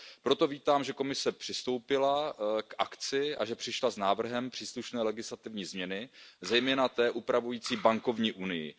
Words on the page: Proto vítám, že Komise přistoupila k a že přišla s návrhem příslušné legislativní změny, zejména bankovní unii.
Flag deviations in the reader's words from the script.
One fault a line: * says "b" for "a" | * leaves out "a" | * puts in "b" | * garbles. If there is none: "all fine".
* puts in "akci"
* puts in "té upravující"